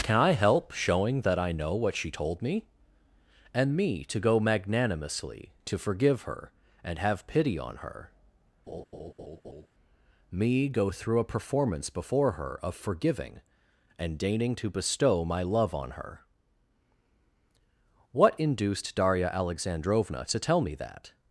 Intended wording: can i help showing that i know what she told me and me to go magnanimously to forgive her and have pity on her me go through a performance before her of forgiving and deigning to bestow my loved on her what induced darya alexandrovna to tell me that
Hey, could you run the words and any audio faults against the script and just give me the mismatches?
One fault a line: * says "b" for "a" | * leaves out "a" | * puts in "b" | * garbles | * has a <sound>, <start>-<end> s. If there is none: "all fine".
* has a laugh, 8.7-9.7 s
* says "love" for "loved"